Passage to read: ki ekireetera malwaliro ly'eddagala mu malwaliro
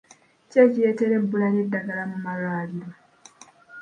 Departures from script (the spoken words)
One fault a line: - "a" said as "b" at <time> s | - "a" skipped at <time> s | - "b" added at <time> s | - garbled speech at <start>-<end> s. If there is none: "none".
- "malwaliro" said as "ebbula" at 1.2 s